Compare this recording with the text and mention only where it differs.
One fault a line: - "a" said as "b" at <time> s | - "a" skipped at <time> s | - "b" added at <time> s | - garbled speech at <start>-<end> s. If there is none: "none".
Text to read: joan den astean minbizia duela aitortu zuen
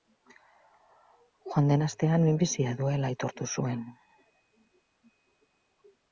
none